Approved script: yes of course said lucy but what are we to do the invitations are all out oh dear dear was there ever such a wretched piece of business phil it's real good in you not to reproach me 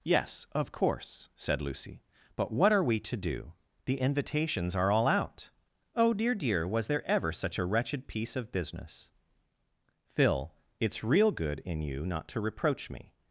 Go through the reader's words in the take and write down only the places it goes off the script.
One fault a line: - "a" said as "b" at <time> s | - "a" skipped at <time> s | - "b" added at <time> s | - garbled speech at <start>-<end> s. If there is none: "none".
none